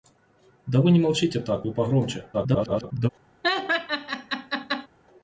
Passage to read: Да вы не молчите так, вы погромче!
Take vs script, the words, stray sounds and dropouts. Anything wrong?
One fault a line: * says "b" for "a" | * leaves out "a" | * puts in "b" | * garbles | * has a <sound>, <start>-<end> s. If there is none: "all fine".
* garbles
* has a laugh, 3.4-4.9 s